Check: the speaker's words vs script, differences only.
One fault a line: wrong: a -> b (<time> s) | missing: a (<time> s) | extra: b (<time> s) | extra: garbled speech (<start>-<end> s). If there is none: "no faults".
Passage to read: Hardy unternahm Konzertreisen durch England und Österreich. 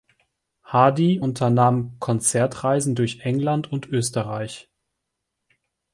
no faults